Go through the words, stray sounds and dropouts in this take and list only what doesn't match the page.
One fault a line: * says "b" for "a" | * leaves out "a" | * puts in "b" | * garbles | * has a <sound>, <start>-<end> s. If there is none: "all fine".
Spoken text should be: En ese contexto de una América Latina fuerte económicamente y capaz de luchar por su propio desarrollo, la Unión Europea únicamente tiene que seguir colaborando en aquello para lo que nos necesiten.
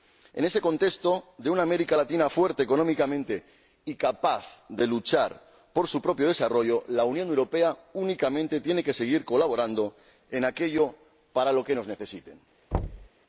* has a thud, 12.7-13.1 s